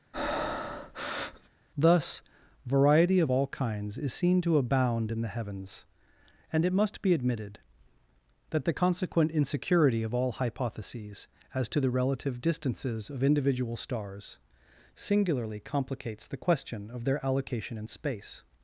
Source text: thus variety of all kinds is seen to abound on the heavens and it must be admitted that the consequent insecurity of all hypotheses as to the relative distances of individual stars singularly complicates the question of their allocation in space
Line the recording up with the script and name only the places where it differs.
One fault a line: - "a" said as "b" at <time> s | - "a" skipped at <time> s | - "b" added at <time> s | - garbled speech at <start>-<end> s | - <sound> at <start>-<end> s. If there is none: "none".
- breath at 0.1-1.5 s
- "on" said as "in" at 5.1 s